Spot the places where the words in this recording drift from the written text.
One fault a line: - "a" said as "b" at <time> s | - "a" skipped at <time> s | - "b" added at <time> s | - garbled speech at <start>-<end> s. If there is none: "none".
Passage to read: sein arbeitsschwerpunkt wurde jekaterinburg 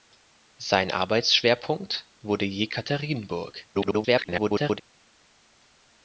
- garbled speech at 3.7-4.8 s